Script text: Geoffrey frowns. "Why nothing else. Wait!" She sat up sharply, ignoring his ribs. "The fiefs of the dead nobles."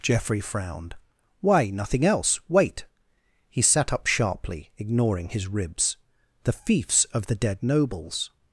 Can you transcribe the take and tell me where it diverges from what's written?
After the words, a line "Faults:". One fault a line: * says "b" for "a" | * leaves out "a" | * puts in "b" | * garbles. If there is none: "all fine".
Geoffrey frowned. "Why nothing else. Wait!" He sat up sharply, ignoring his ribs. "The fiefs of the dead nobles."
Faults:
* says "frowned" for "frowns"
* says "He" for "She"